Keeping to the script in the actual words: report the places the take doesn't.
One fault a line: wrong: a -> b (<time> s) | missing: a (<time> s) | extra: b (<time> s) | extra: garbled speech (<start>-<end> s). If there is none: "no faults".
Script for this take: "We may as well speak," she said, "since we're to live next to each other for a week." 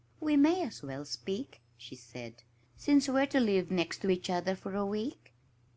no faults